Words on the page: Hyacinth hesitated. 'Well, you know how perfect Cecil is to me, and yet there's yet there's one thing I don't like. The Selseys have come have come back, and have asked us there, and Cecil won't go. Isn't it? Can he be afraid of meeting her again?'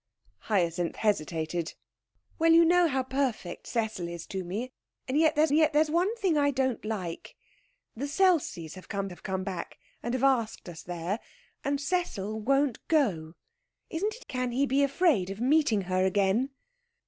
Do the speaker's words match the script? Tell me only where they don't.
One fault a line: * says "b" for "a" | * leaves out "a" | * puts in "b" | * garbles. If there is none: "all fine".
all fine